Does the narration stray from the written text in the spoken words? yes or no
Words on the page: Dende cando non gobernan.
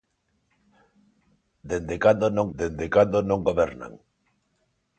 yes